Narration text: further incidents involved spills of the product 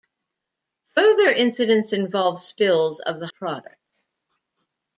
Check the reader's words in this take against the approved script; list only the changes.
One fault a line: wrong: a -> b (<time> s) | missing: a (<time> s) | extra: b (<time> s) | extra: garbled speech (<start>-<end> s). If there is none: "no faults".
no faults